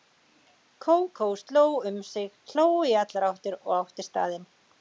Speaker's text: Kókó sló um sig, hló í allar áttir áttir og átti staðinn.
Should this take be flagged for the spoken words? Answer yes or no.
yes